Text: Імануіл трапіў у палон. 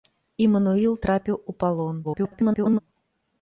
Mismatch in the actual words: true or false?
true